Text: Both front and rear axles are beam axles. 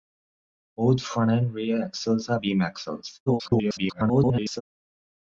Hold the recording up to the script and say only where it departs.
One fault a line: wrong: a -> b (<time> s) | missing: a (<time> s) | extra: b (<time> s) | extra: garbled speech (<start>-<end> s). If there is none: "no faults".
extra: garbled speech (3.3-4.6 s)